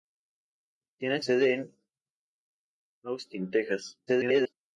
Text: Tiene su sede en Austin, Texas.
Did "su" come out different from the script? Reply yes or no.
yes